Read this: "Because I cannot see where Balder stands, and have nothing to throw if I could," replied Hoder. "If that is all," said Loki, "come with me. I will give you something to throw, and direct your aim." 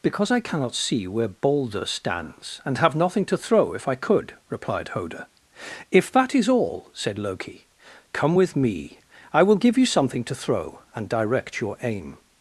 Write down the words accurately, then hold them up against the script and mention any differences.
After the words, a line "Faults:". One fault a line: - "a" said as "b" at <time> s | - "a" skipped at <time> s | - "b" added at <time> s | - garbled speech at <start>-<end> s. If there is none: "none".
"Because I cannot see where Balder stands, and have nothing to throw if I could," replied Hoder. "If that is all," said Loki, "come with me. I will give you something to throw, and direct your aim."
Faults:
none